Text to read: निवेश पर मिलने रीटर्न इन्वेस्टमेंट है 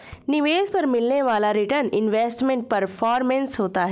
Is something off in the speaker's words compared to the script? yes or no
yes